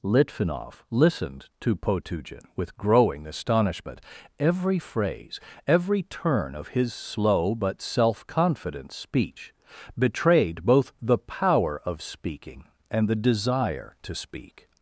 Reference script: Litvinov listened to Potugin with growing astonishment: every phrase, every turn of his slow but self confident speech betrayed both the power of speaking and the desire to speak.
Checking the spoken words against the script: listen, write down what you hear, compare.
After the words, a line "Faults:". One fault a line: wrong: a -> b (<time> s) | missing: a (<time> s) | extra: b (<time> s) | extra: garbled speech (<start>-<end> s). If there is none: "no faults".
Litvinov listened to Potugin with growing astonishment: every phrase, every turn of his slow but self confident speech betrayed both the power of speaking and the desire to speak.
Faults:
no faults